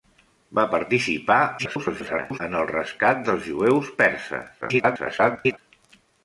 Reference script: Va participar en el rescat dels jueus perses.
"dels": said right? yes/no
yes